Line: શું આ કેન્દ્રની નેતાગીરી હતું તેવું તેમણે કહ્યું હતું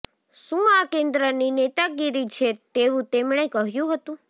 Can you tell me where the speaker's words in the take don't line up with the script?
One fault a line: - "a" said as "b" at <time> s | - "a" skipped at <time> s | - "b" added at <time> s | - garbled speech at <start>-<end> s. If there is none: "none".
- "હતું" said as "છે" at 2.3 s